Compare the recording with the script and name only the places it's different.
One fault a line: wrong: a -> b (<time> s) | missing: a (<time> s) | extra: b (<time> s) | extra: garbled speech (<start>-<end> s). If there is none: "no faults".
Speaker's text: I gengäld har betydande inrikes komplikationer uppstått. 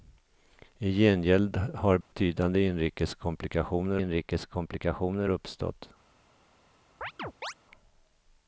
extra: inrikes komplikationer (4.0 s)